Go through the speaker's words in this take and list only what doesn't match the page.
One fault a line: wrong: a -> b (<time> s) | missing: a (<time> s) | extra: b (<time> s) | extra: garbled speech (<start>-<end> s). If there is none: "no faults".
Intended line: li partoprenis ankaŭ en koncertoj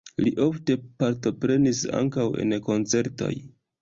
extra: ofte (0.4 s)